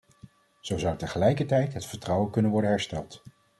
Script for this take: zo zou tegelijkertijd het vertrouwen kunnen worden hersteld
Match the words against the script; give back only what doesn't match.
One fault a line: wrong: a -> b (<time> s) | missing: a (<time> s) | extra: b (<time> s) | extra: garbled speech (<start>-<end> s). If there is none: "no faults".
no faults